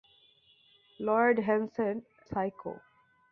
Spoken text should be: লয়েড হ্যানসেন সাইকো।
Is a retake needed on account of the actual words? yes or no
no